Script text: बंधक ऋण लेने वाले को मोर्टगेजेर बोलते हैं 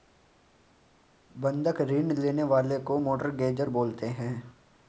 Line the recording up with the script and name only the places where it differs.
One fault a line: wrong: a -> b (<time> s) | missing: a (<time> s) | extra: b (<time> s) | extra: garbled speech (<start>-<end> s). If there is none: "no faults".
no faults